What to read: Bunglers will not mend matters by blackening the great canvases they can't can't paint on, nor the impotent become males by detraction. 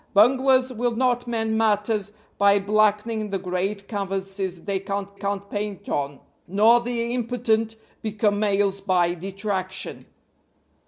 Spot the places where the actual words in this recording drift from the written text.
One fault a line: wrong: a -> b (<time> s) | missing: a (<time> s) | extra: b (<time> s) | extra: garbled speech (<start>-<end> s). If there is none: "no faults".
no faults